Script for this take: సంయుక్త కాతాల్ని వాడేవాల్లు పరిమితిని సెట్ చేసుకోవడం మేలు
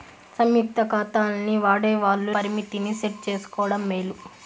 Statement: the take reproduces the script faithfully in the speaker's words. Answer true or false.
true